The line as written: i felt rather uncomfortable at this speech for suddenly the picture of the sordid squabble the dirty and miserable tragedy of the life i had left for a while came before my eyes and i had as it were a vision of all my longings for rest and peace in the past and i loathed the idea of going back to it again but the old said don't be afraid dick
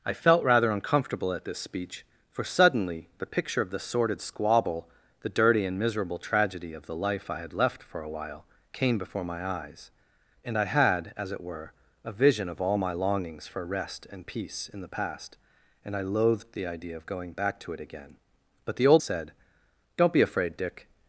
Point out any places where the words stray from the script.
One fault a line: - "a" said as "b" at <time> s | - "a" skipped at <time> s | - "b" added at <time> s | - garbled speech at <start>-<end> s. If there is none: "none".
none